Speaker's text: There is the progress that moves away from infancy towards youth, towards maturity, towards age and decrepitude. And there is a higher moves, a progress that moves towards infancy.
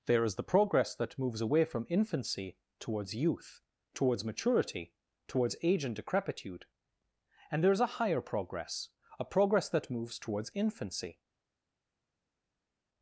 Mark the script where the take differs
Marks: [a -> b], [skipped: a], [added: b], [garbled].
There is the progress that moves away from infancy towards youth, towards maturity, towards age and decrepitude. And there is a higher [moves, -> progress] a progress that moves towards infancy.